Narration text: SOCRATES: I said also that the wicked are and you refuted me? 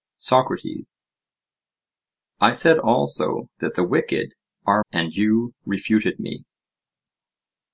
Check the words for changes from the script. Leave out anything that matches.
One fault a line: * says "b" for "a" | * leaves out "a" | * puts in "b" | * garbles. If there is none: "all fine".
all fine